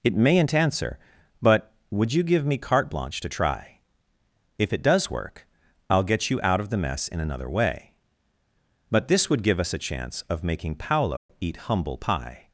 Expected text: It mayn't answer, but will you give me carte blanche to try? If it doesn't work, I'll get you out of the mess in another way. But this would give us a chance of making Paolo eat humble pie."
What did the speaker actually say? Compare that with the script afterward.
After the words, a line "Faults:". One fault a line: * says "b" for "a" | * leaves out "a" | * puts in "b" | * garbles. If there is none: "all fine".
It mayn't answer, but would you give me carte blanche to try? If it does work, I'll get you out of the mess in another way. But this would give us a chance of making Paolo eat humble pie."
Faults:
* says "would" for "will"
* says "does" for "doesn't"